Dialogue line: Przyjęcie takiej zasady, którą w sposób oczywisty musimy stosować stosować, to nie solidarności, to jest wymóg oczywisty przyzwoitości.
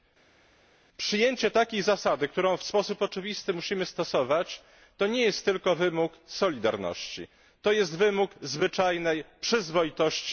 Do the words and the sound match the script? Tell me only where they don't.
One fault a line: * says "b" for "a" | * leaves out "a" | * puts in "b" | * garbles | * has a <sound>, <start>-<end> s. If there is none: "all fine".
* leaves out "stosować"
* puts in "jest tylko wymóg"
* says "zwyczajnej" for "oczywisty"